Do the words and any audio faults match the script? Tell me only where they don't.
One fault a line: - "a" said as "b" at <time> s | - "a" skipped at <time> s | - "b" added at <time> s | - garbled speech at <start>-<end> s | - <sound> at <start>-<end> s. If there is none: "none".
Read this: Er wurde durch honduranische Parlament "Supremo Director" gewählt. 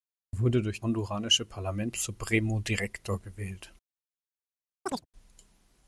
- chirp at 4.9-5.1 s